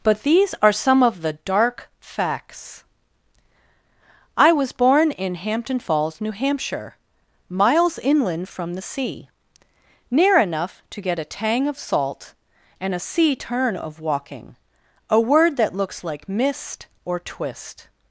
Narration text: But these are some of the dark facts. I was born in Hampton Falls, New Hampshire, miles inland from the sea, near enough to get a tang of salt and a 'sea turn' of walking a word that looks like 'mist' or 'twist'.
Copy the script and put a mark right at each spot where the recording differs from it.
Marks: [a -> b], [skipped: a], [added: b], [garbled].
But these are some of the dark facts. I was born in Hampton Falls, New Hampshire, miles inland from the sea, near enough to get a tang of salt and a 'sea turn' of walking a word that looks like 'mist' or 'twist'.